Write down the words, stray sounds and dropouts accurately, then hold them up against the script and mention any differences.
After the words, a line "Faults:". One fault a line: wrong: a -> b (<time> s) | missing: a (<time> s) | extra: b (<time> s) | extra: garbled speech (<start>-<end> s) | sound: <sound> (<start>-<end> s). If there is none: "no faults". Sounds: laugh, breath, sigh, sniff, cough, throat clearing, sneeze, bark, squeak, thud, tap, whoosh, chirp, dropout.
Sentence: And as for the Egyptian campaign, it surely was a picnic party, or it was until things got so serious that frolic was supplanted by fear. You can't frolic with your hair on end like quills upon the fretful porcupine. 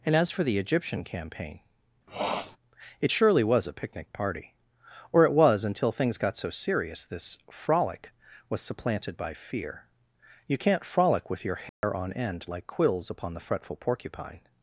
And as for the Egyptian campaign, it surely was a picnic party, or it was until things got so serious this frolic was supplanted by fear. You can't frolic with your hair on end like quills upon the fretful porcupine.
Faults:
sound: sniff (2.1-2.6 s)
wrong: that -> this (7.0 s)
sound: dropout (11.7-11.8 s)